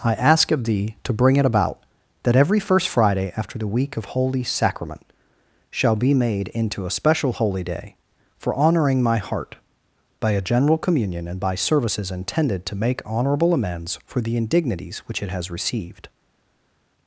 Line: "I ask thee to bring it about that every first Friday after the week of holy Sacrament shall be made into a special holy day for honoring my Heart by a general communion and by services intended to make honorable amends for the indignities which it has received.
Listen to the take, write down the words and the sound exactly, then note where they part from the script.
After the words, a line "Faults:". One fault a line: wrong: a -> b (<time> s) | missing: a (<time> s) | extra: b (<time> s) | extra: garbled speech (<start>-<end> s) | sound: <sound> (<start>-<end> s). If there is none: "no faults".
"I ask of thee to bring it about that every first Friday after the week of holy Sacrament shall be made into a special holy day for honoring my Heart by a general communion and by services intended to make honorable amends for the indignities which it has received.
Faults:
extra: of (0.5 s)